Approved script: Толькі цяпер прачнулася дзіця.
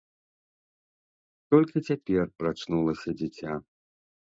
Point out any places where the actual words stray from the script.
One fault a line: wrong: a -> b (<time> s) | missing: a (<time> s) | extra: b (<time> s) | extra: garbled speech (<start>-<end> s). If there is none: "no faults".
no faults